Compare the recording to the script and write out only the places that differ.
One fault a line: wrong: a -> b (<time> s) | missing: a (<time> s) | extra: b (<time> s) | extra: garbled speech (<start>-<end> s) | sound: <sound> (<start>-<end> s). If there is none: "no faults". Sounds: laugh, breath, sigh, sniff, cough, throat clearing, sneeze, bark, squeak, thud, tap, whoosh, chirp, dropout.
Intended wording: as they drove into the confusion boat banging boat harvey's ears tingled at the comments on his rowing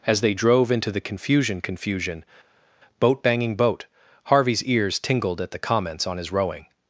extra: confusion (1.6 s)